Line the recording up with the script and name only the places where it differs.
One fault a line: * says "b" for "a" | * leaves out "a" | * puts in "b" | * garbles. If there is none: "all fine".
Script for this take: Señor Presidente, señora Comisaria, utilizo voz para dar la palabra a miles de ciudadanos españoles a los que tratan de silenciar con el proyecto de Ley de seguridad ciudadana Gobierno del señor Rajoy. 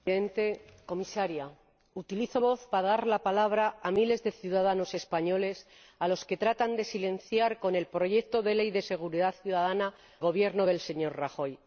all fine